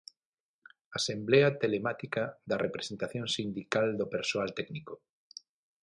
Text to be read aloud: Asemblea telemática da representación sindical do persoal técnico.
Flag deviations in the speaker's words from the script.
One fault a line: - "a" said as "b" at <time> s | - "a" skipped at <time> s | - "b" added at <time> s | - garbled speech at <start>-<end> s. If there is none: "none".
none